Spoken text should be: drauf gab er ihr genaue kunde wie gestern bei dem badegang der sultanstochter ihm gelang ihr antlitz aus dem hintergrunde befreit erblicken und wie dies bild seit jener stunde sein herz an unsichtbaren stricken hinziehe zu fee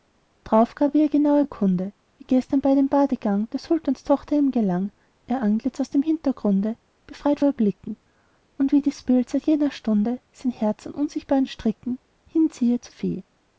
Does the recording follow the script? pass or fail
pass